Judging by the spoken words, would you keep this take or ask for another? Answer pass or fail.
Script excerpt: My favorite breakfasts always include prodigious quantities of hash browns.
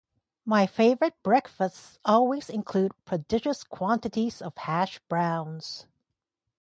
pass